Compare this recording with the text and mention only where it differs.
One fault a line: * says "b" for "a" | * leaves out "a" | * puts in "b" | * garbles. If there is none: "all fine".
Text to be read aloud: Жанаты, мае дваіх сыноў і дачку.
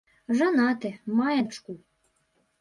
* leaves out "дваіх сыноў і"